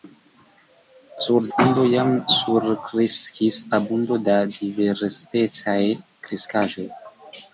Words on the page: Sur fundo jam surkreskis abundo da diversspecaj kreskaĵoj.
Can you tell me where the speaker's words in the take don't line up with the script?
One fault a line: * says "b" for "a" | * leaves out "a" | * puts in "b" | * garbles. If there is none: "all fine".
all fine